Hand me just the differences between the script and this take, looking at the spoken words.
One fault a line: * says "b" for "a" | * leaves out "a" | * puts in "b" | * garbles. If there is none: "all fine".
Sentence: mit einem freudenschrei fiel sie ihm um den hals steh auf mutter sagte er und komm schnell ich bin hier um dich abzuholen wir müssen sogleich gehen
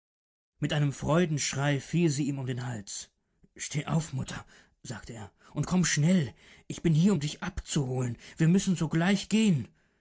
all fine